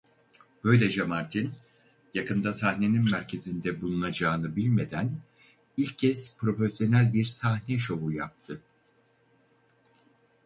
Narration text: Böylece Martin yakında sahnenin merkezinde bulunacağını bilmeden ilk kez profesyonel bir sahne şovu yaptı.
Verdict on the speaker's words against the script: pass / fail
pass